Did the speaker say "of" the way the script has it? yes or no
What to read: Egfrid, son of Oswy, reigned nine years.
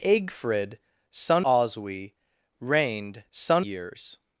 no